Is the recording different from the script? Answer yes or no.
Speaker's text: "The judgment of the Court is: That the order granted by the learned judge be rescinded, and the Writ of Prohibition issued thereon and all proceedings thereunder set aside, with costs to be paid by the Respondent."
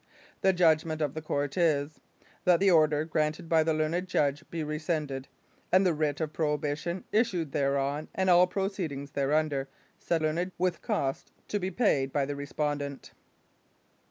yes